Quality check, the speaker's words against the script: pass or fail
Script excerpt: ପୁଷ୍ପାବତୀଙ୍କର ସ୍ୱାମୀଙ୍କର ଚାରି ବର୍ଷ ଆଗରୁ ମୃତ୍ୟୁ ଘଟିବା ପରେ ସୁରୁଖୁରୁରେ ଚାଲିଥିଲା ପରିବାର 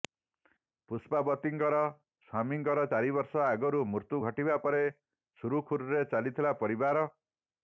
pass